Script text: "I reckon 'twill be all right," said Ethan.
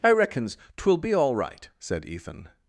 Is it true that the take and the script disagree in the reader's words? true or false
true